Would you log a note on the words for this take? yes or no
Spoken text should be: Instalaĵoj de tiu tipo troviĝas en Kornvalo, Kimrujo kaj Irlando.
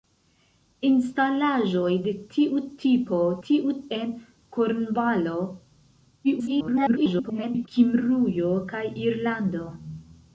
yes